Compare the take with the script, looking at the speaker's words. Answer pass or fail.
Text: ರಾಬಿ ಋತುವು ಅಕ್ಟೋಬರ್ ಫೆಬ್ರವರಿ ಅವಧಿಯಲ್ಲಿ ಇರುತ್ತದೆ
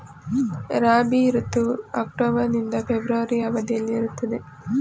fail